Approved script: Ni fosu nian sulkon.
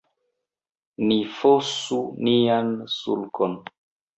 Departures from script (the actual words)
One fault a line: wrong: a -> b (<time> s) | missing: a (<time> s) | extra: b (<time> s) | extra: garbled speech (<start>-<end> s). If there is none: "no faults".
no faults